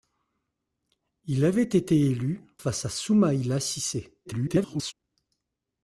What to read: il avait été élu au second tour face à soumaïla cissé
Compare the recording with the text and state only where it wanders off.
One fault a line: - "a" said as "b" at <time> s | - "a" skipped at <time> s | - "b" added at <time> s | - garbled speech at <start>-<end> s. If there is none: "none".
- "au second tour" skipped at 2.4 s
- garbled speech at 4.2-4.9 s